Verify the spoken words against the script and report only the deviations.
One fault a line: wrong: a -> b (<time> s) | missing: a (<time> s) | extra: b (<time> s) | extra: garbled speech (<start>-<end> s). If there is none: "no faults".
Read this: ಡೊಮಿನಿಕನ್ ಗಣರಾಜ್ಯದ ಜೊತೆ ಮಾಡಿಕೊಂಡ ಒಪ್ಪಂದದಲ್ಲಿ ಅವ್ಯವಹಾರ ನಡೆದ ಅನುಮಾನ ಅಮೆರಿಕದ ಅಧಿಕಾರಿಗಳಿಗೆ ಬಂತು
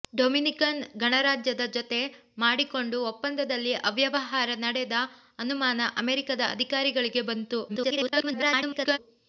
extra: garbled speech (7.7-9.0 s)